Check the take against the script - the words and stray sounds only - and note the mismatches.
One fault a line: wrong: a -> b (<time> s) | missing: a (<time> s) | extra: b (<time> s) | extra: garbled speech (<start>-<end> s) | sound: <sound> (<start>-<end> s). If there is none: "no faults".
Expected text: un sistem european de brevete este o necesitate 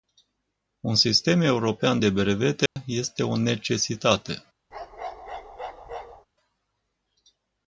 sound: dropout (2.7-2.8 s)
sound: bark (4.7-6.3 s)